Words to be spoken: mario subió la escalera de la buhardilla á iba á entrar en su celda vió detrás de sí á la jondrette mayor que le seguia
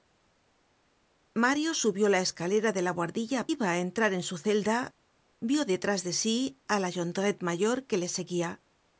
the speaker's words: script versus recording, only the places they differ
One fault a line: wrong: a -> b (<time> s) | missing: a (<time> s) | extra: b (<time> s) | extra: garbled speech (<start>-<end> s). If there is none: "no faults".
no faults